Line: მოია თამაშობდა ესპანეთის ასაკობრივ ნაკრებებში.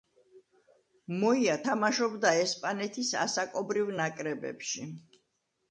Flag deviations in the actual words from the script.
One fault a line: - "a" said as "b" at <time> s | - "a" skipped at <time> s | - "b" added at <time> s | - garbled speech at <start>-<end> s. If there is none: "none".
none